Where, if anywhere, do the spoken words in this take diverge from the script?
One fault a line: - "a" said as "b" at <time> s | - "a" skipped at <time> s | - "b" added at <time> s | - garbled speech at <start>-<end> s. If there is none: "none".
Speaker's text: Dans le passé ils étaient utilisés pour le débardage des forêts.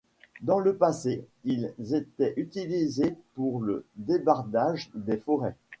none